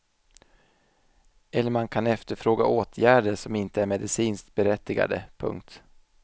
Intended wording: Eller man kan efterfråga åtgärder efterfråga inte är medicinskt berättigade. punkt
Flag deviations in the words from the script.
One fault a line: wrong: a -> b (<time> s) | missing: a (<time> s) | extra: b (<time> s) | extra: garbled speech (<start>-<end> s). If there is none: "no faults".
wrong: efterfråga -> som (3.4 s)